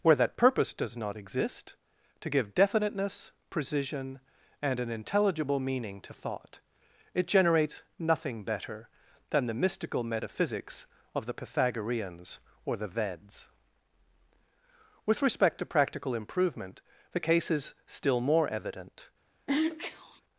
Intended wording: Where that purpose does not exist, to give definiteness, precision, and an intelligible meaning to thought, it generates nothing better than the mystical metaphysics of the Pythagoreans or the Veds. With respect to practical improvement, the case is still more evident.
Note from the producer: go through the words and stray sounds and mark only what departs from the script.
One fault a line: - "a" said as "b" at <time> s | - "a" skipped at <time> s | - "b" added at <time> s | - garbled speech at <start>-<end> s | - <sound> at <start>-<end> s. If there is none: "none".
- sneeze at 19.5-20.2 s